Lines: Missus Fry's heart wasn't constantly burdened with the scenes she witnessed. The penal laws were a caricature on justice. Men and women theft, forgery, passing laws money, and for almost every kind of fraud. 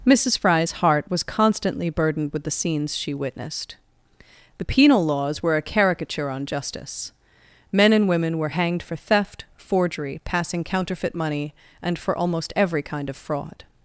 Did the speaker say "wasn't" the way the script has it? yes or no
no